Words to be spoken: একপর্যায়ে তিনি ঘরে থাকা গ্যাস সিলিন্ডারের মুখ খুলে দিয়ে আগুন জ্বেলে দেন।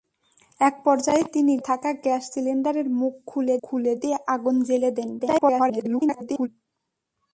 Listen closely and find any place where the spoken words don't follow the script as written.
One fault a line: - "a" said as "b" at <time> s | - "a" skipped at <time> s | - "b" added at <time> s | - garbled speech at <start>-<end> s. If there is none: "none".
- "ঘরে" skipped at 1.5 s
- "খুলে" added at 3.6 s
- garbled speech at 5.2-6.5 s